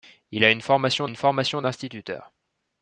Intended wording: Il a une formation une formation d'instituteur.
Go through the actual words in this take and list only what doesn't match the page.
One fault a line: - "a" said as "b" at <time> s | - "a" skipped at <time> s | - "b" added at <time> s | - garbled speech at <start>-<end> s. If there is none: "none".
none